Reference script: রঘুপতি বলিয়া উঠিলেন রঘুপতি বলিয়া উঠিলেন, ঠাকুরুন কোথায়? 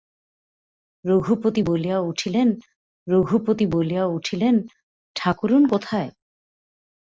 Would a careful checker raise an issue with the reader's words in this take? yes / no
no